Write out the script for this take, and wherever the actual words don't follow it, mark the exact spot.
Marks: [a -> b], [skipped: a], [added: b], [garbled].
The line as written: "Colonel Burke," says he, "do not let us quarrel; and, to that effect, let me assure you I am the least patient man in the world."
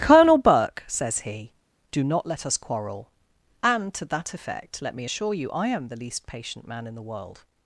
"Colonel Burke," says he, "do not let us quarrel; and, to that effect, let me assure you I am the least patient man in the world."